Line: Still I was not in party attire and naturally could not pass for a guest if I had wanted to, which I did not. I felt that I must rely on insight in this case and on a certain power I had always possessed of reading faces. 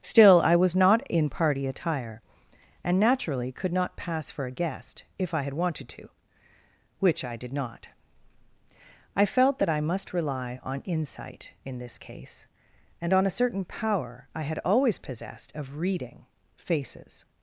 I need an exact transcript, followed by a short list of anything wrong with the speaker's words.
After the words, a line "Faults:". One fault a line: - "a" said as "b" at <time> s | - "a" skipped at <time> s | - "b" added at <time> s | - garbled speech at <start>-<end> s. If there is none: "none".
Still I was not in party attire and naturally could not pass for a guest if I had wanted to, which I did not. I felt that I must rely on insight in this case and on a certain power I had always possessed of reading faces.
Faults:
none